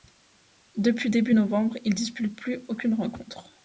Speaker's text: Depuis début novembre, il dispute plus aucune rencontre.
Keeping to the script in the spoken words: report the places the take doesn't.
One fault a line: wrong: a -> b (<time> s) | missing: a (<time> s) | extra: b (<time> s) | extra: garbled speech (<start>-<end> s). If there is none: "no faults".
no faults